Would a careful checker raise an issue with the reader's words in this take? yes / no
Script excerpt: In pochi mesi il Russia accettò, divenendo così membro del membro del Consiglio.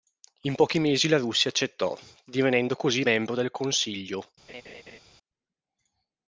yes